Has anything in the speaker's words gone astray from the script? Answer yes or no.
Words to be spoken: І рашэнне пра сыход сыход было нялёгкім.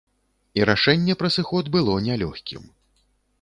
yes